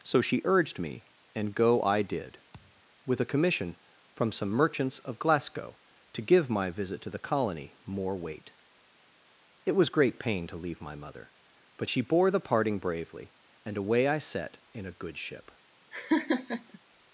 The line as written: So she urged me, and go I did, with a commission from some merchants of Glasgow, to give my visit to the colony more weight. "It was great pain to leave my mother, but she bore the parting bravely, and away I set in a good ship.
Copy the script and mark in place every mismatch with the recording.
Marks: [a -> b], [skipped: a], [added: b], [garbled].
So she urged me, and go I did, with a commission from some merchants of Glasgow, to give my visit to the colony more weight. "It was great pain to leave my mother, but she bore the parting bravely, and away I set in a good ship.